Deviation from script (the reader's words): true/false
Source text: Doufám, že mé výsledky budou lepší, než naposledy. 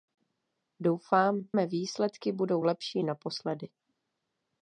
true